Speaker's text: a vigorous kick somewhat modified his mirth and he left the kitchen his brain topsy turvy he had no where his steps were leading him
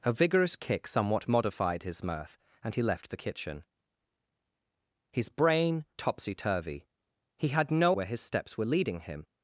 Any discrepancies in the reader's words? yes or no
no